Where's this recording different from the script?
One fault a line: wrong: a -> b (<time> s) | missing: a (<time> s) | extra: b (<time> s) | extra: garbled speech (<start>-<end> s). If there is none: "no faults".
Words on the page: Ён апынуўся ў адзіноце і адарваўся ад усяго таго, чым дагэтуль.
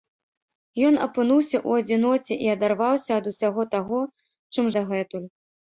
no faults